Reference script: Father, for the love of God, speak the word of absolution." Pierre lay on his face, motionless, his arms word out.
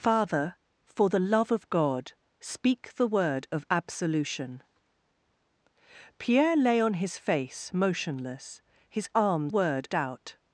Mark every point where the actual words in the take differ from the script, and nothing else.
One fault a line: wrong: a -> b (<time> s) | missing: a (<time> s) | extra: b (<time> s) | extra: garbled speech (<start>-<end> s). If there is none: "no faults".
no faults